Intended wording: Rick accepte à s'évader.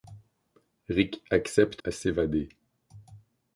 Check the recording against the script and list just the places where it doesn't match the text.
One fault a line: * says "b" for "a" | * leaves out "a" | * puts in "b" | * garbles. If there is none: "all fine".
all fine